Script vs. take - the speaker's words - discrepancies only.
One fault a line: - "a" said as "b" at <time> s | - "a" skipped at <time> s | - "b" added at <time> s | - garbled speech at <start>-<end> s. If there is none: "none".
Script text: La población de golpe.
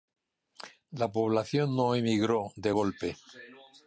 - "no emigró" added at 1.8 s